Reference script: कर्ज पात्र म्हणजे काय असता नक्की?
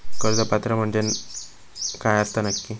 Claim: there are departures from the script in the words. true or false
false